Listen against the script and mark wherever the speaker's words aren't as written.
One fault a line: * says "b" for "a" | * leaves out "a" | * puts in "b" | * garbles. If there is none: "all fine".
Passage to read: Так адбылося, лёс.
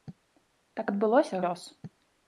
all fine